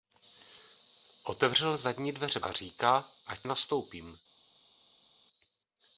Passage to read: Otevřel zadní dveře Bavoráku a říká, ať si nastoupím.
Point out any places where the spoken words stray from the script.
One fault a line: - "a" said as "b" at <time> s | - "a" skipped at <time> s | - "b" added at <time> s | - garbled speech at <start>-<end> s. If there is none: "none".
- "Bavoráku" skipped at 2.4 s
- "si" skipped at 3.5 s